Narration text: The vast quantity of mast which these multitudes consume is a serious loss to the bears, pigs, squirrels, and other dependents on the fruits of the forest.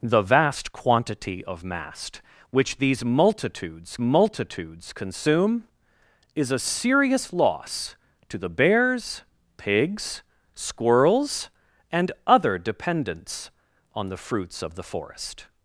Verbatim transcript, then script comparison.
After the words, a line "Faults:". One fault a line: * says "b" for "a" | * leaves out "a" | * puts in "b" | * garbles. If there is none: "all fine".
The vast quantity of mast which these multitudes multitudes consume is a serious loss to the bears, pigs, squirrels, and other dependents on the fruits of the forest.
Faults:
* puts in "multitudes"